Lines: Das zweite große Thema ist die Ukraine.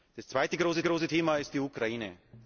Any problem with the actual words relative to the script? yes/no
yes